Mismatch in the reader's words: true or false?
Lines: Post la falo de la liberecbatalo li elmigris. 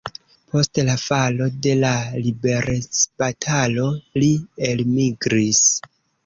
false